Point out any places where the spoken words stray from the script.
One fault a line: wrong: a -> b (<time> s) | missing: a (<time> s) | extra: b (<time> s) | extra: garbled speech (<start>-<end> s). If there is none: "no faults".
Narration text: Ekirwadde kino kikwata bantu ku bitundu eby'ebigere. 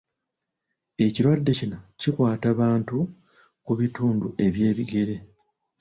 no faults